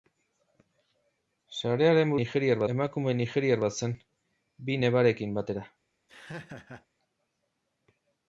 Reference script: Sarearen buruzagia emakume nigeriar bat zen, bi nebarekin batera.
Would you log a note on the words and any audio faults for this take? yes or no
yes